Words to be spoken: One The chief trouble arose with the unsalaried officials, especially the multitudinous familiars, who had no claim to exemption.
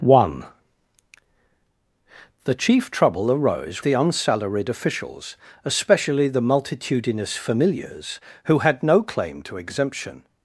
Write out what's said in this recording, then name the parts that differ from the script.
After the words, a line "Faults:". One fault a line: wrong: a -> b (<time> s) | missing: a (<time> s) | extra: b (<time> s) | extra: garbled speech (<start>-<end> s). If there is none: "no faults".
One The chief trouble arose the unsalaried officials, especially the multitudinous familiars, who had no claim to exemption.
Faults:
missing: with (3.8 s)